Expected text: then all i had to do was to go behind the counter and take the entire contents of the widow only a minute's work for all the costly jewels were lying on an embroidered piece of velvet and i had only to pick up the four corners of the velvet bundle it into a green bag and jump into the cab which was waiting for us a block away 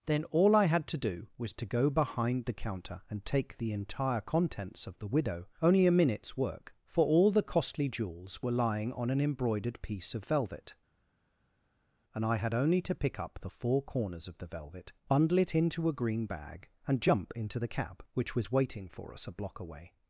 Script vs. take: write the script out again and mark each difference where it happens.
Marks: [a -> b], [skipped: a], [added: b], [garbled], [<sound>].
then all i had to do was to go behind the counter and take the entire contents of the widow only a minute's work for all the costly jewels were lying on an embroidered piece of velvet and i had only to pick up the four corners of the velvet bundle it into a green bag and jump into the cab which was waiting for us a block away